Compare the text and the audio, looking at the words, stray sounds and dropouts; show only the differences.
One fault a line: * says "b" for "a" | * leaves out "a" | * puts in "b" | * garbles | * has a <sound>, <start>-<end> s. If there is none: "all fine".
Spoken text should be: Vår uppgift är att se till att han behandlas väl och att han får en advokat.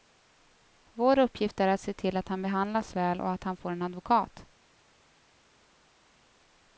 all fine